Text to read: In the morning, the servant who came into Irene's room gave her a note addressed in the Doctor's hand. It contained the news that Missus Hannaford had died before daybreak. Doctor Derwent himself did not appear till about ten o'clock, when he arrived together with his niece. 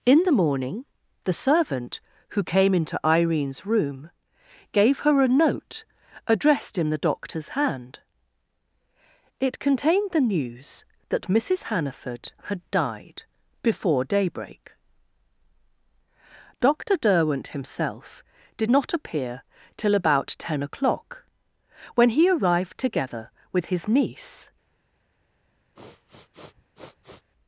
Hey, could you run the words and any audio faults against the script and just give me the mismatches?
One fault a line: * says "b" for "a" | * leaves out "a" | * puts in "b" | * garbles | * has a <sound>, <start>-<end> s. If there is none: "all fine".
* has a sniff, 25.7-27.3 s